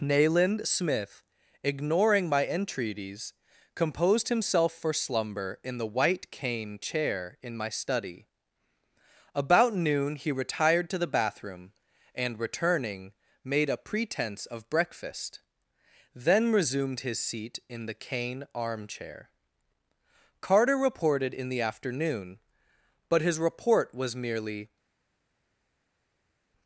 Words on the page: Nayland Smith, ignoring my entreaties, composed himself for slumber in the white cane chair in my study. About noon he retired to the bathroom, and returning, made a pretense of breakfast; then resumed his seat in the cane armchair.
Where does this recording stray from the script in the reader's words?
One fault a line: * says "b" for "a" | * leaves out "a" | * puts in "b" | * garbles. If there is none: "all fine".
* puts in "Carter reported in the afternoon but his report was merely"